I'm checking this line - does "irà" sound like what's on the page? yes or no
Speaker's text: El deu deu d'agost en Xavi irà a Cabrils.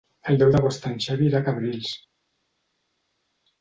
yes